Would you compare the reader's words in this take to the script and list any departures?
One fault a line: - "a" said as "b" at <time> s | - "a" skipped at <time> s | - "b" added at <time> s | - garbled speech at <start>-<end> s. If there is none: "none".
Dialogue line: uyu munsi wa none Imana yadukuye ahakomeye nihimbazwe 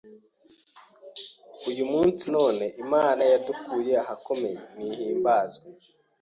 - "wa" skipped at 2.3 s